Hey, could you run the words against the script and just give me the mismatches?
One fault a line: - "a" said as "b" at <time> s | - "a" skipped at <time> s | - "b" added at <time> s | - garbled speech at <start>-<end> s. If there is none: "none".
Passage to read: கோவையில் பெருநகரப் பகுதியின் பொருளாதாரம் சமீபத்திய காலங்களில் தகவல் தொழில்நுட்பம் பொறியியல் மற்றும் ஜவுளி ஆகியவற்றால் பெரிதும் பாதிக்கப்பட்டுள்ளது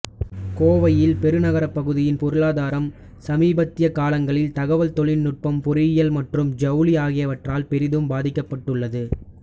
none